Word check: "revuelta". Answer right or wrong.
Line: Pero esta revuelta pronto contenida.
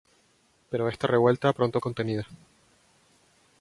right